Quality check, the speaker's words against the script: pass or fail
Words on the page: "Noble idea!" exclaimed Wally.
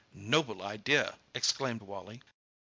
pass